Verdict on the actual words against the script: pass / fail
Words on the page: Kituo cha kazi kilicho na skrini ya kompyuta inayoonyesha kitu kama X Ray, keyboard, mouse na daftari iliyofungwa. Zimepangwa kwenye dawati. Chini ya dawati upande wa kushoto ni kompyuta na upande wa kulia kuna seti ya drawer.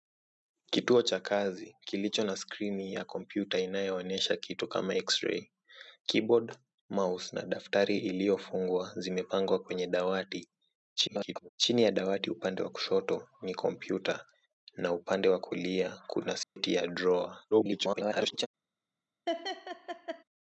fail